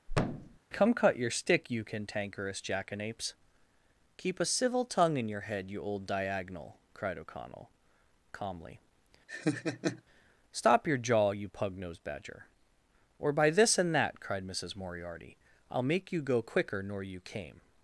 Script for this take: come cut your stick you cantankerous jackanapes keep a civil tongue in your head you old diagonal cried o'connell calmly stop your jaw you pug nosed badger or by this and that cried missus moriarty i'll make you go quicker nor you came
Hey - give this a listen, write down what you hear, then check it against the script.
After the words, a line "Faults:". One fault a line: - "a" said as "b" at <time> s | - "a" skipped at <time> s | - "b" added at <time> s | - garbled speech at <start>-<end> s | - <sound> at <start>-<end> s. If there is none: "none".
come cut your stick you cantankerous jackanapes keep a civil tongue in your head you old diagonal cried o'connell calmly stop your jaw you pug nosed badger or by this and that cried missus moriarty i'll make you go quicker nor you came
Faults:
- thud at 0.1-0.6 s
- laugh at 9.3-10.0 s